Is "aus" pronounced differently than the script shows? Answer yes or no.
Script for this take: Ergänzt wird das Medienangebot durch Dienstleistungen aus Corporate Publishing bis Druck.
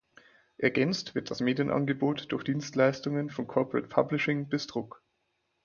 yes